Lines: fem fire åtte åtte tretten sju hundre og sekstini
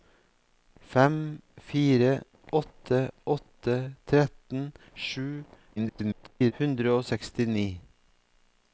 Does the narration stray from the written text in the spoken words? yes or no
yes